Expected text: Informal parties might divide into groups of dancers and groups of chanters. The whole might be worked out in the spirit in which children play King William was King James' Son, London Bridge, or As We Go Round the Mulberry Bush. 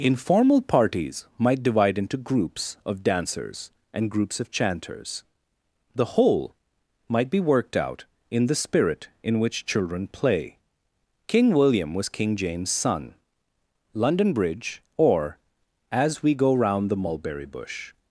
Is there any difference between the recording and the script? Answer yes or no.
no